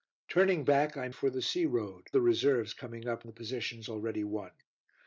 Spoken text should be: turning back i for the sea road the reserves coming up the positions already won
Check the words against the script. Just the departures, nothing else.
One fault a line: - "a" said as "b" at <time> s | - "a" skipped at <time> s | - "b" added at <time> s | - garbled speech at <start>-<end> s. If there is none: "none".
none